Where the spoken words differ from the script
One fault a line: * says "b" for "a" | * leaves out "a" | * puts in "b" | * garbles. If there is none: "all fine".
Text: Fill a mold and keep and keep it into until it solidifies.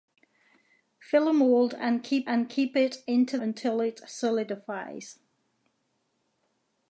all fine